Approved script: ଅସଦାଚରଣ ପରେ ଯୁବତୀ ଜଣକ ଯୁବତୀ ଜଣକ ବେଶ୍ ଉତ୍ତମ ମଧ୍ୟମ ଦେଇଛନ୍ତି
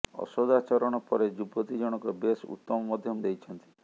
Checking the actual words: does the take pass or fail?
fail